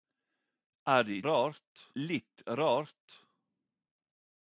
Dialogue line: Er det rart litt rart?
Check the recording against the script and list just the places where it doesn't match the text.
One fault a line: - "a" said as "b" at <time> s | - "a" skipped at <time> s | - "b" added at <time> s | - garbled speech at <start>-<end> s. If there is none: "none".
none